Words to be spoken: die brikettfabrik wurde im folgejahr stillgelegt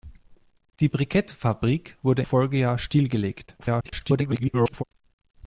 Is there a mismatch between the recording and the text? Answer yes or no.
yes